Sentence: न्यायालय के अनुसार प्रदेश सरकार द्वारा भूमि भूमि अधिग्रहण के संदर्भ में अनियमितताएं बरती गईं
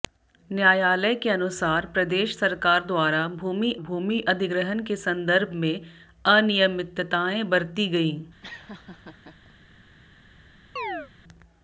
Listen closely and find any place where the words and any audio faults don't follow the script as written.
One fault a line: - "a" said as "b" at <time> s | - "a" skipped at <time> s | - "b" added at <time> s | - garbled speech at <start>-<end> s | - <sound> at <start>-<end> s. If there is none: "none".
- laugh at 8.4-9.6 s
- chirp at 10.8-11.1 s